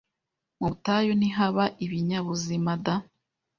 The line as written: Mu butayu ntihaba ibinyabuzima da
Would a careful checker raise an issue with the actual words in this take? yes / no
no